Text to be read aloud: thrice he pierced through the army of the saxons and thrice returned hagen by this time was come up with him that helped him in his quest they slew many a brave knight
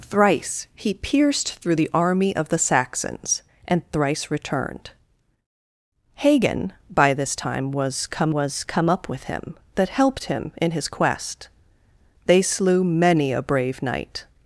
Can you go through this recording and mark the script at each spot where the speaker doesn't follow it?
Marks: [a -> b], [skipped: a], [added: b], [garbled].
thrice he pierced through the army of the saxons and thrice returned hagen by this time was come [added: was come] up with him that helped him in his quest they slew many a brave knight